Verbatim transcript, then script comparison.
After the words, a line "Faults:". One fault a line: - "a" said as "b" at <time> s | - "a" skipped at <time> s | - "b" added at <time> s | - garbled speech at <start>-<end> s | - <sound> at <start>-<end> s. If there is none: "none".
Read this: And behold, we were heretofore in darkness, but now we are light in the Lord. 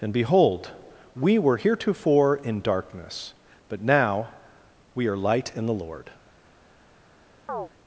And behold, we were heretofore in darkness, but now we are light in the Lord.
Faults:
- chirp at 7.5-7.7 s